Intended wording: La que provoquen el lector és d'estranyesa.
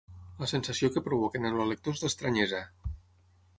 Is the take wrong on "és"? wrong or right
right